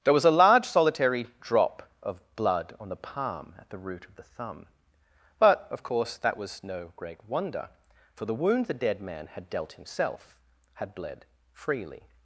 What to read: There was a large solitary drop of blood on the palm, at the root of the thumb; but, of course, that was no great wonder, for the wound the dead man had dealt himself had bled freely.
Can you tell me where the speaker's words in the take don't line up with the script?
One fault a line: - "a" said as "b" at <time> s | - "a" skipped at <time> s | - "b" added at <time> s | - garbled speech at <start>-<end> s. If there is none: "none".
none